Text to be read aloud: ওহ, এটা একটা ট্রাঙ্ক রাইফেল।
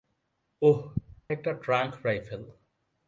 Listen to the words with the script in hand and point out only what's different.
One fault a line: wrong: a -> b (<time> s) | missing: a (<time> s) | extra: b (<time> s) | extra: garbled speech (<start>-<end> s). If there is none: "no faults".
missing: এটা (0.8 s)